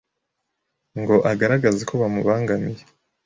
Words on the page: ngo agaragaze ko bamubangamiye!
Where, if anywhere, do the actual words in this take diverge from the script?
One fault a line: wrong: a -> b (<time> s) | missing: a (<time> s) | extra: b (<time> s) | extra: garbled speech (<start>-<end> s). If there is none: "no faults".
no faults